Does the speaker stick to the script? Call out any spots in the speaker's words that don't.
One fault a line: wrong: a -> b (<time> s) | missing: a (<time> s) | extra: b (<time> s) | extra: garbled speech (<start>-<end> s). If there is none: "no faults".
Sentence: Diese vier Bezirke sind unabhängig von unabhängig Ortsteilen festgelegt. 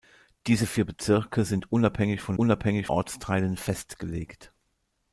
no faults